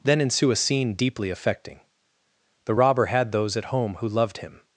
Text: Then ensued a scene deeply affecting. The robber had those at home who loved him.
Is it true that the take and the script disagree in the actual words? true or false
true